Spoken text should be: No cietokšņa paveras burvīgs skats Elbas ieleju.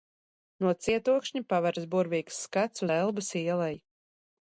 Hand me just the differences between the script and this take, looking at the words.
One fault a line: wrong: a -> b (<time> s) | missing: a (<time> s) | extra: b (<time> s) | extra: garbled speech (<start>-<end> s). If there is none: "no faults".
no faults